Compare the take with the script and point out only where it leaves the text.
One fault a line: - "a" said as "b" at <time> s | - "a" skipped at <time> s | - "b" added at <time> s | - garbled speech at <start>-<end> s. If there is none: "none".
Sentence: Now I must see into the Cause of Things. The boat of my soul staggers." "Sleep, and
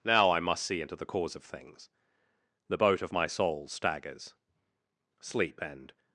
none